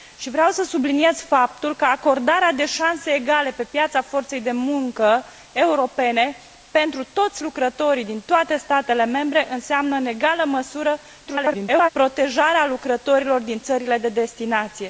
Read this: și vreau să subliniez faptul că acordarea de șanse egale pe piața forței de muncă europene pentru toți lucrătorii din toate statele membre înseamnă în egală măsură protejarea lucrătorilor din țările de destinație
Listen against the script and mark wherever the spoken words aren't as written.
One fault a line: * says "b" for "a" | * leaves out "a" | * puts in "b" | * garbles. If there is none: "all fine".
* garbles